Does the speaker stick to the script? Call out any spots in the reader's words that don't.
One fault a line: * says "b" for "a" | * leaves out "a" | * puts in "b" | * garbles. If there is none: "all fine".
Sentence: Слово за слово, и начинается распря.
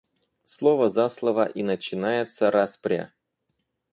all fine